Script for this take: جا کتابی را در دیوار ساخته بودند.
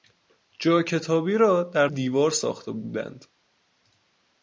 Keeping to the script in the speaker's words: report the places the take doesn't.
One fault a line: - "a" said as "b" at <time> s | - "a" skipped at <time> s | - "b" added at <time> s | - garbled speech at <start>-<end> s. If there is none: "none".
none